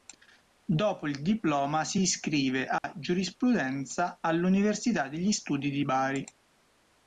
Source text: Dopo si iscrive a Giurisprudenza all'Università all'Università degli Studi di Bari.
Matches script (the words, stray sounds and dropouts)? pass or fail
fail